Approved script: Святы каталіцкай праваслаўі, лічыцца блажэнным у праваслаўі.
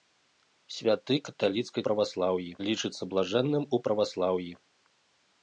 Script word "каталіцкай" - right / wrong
right